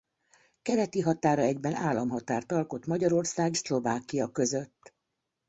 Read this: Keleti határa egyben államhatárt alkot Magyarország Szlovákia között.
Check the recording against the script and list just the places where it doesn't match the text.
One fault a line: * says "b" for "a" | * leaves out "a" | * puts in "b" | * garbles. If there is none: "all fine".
all fine